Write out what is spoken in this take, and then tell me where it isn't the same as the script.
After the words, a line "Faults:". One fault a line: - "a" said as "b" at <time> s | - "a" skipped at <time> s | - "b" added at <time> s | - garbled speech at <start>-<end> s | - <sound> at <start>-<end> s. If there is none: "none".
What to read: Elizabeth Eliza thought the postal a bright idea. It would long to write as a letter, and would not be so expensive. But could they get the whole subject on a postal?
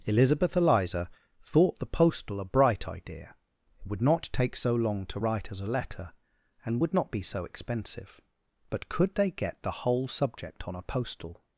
Elizabeth Eliza thought the postal a bright idea. It would not take so long to write as a letter, and would not be so expensive. But could they get the whole subject on a postal?
Faults:
- "not take so" added at 4.0 s